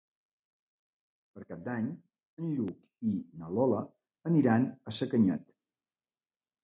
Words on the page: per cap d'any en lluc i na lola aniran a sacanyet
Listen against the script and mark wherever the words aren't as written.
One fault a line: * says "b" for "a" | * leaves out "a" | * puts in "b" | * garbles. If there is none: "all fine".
all fine